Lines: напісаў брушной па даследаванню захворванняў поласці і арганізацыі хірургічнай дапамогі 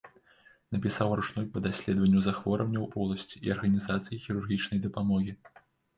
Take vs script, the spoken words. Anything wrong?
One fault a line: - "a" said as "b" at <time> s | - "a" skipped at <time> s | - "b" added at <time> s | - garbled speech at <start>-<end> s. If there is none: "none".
none